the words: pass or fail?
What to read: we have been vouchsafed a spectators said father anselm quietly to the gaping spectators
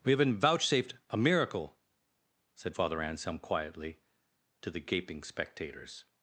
fail